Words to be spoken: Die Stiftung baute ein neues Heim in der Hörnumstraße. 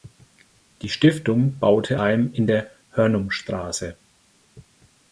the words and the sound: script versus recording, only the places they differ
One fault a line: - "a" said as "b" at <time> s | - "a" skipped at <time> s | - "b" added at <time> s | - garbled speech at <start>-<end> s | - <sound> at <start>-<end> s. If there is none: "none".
- "ein neues" skipped at 2.0 s